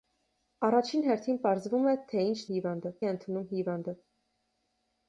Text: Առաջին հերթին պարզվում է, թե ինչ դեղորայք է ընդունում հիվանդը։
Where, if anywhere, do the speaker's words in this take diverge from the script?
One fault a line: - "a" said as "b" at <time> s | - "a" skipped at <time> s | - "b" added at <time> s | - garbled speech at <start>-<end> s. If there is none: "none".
- "դեղորայք" said as "հիվանդը" at 2.5 s